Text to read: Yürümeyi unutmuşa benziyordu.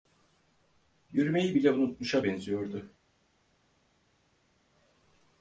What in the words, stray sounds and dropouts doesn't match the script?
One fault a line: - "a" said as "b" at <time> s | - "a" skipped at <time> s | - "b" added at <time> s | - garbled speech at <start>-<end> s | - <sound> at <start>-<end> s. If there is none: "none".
- "bile" added at 1.5 s